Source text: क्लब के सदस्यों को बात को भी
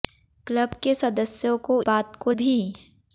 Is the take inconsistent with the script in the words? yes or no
no